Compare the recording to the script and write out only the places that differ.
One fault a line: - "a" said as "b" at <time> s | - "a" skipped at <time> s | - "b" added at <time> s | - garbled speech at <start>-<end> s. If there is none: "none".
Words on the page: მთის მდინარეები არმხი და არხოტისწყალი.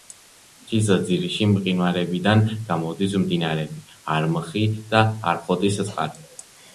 - "ძირში მყინვარებიდან გამოდის" added at 1.1 s